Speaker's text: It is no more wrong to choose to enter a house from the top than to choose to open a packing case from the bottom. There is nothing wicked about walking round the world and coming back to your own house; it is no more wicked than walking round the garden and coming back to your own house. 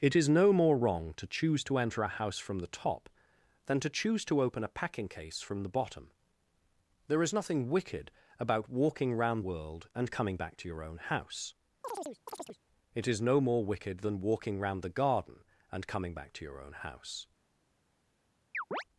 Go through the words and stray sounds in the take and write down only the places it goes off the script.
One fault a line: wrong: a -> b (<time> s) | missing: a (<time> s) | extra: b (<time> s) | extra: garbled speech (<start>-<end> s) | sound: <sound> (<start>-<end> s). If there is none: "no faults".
missing: the (9.4 s)
sound: chirp (11.8-12.6 s)
sound: chirp (18.5-18.8 s)